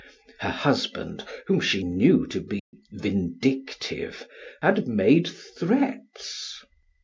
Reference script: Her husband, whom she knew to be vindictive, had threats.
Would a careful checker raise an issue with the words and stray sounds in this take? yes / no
yes